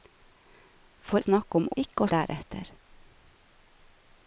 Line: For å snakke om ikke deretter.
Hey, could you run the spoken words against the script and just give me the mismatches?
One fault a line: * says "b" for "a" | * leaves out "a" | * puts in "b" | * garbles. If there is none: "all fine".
all fine